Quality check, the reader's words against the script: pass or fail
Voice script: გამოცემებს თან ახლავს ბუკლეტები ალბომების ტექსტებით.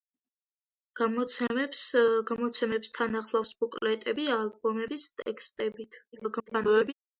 fail